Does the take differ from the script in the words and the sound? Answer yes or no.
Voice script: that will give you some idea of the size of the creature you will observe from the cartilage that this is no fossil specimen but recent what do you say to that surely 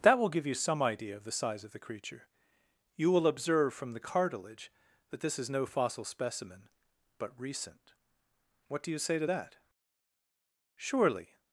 no